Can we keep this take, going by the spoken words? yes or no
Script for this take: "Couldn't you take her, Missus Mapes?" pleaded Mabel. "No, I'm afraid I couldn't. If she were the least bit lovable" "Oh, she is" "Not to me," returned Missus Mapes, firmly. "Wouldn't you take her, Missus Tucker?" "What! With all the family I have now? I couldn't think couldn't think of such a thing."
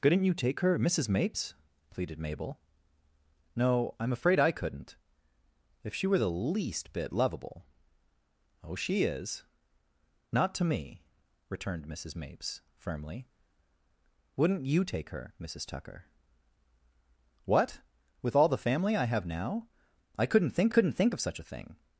yes